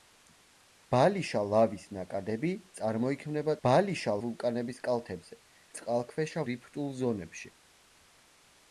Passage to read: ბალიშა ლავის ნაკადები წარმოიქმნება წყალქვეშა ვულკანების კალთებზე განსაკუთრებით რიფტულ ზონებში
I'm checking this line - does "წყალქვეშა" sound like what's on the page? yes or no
no